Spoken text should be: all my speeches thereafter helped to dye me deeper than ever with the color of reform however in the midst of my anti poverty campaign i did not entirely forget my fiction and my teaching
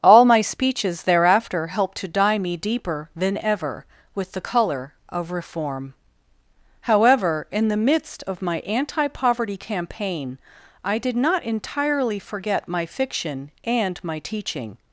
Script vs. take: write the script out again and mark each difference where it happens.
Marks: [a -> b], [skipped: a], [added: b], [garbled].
all my speeches thereafter helped to dye me deeper than ever with the color of reform however in the midst of my anti poverty campaign i did not entirely forget my fiction and my teaching